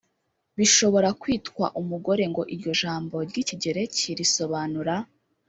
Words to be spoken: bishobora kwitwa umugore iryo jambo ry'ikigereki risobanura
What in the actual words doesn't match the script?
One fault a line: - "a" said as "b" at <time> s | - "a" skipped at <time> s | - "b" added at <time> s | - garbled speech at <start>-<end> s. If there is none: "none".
- "ngo" added at 2.3 s